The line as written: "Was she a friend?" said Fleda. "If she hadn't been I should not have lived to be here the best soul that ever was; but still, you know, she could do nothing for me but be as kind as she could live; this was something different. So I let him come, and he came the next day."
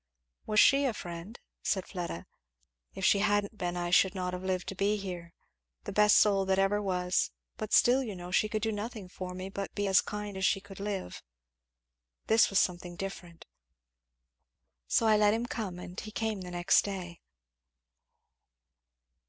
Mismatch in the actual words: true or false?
false